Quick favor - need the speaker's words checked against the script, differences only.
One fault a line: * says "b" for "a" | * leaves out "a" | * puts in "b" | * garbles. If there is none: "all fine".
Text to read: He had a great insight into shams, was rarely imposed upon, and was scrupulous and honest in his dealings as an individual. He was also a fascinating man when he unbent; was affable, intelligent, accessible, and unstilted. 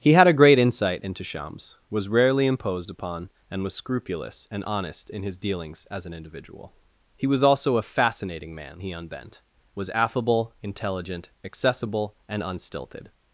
* leaves out "when"